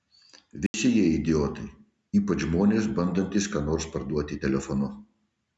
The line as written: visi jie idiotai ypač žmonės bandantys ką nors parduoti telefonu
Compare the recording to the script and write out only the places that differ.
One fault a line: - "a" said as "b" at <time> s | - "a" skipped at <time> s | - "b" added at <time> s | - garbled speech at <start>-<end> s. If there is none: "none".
none